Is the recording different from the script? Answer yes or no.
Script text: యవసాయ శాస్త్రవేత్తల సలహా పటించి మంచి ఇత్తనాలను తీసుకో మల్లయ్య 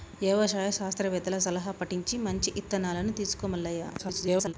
yes